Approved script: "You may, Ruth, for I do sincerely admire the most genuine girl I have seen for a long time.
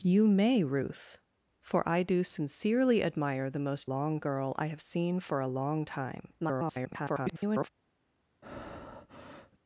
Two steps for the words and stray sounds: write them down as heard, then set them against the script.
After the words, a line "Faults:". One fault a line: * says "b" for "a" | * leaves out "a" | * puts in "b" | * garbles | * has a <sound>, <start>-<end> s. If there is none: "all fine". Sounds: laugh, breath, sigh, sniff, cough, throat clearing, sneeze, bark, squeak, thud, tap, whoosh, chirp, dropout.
"You may, Ruth, for I do sincerely admire the most long girl I have seen for a long time. [garbled]
Faults:
* says "long" for "genuine"
* garbles
* has a breath, 8.4-9.6 s